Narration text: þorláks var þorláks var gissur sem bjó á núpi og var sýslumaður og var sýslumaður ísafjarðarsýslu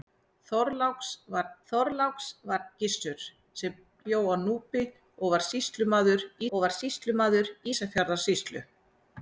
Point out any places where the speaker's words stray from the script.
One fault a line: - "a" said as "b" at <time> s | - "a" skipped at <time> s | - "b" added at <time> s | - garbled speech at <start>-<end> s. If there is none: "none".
none